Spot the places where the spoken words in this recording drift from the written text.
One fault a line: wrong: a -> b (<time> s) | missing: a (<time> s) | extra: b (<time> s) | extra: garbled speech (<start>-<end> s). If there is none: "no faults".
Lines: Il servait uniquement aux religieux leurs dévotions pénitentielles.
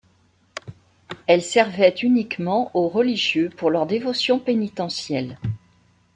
wrong: Il -> Elle (1.3 s)
extra: pour (3.5 s)